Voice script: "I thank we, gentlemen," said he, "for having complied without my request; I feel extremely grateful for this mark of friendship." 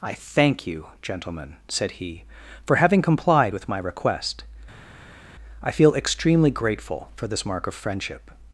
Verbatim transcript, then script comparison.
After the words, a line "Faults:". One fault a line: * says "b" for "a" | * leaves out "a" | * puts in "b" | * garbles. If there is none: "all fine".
"I thank you, gentlemen," said he, "for having complied with my request; I feel extremely grateful for this mark of friendship."
Faults:
* says "you" for "we"
* says "with" for "without"